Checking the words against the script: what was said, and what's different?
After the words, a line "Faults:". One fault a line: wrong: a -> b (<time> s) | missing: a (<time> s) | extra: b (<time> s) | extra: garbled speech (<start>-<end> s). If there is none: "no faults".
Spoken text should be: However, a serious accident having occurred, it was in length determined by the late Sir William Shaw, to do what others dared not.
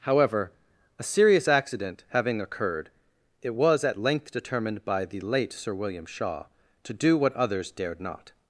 However, a serious accident having occurred, it was at length determined by the late Sir William Shaw, to do what others dared not.
Faults:
wrong: in -> at (3.8 s)